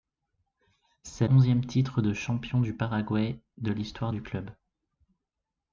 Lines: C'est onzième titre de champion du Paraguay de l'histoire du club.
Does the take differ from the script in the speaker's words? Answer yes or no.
no